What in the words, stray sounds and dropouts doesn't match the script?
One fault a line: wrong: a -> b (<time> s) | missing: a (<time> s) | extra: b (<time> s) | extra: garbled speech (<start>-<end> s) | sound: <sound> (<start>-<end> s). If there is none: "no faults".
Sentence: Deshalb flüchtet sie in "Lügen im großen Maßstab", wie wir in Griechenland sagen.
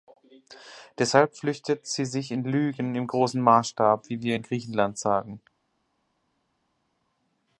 extra: sich (2.0 s)